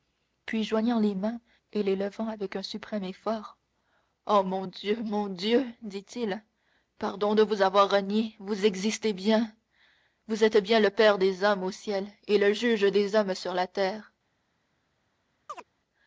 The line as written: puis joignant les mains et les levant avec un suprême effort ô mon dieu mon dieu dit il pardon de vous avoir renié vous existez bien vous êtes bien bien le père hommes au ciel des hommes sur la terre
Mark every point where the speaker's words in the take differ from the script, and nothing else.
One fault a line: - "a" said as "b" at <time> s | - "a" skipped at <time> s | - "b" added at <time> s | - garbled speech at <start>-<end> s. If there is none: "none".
- "bien" skipped at 10.8 s
- "des" added at 11.2 s
- "et le juge" added at 12.3 s